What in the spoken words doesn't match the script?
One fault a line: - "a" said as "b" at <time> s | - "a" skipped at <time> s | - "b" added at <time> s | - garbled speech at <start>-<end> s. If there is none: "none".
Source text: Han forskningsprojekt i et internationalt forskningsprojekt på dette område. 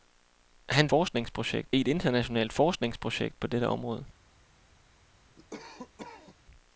none